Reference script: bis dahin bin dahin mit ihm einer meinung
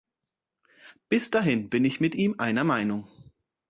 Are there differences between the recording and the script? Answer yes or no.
yes